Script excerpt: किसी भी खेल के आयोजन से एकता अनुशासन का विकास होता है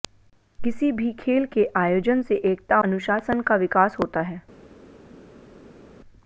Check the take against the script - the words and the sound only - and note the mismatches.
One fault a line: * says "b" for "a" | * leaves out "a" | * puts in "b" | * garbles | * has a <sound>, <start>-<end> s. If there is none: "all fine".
all fine